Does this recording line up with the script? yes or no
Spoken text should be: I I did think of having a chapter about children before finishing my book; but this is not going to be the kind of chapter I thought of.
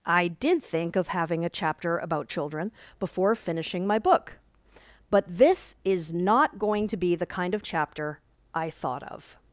no